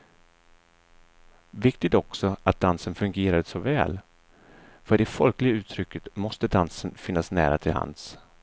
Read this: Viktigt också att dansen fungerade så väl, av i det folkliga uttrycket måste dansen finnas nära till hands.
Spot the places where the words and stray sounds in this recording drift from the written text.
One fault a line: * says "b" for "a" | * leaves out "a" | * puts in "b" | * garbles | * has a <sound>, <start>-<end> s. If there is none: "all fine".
* says "för" for "av"